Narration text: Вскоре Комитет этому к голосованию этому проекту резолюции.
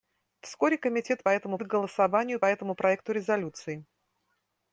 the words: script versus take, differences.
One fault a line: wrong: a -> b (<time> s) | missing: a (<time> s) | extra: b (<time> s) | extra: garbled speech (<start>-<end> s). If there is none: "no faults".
no faults